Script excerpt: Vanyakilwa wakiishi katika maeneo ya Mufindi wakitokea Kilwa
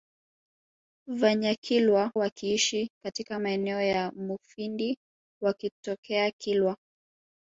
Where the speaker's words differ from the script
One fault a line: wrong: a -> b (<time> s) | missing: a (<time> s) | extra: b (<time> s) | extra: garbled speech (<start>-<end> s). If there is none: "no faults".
no faults